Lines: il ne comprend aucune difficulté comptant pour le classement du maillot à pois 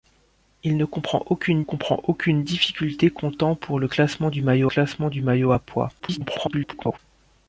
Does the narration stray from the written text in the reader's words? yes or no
yes